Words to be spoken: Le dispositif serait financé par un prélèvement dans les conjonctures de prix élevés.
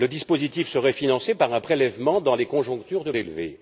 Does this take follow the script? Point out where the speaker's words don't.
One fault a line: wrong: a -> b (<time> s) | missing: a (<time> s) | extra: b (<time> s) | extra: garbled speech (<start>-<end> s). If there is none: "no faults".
missing: prix (3.1 s)